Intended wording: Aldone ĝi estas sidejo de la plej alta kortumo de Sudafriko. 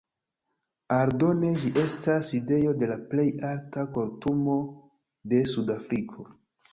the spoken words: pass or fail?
pass